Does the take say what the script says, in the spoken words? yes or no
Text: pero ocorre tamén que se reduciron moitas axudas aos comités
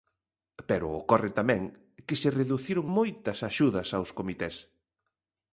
yes